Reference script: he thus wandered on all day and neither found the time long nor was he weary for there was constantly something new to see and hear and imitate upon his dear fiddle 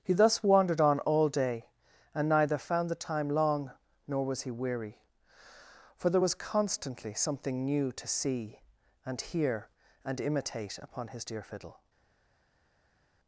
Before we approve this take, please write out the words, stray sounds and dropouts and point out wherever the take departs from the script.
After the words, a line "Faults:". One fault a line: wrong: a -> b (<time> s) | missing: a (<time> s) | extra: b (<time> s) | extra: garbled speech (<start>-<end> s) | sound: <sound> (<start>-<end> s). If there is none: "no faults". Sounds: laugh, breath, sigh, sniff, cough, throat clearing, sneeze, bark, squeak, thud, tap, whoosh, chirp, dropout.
he thus wandered on all day and neither found the time long nor was he weary for there was constantly something new to see and hear and imitate upon his dear fiddle
Faults:
no faults